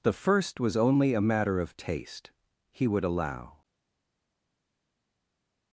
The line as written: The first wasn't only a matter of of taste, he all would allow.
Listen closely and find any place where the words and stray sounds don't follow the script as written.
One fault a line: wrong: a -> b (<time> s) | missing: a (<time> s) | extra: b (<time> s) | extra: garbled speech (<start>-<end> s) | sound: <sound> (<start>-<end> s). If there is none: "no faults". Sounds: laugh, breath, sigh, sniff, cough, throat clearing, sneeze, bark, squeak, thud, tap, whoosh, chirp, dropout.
wrong: wasn't -> was (0.6 s)
missing: of (1.8 s)
missing: all (2.9 s)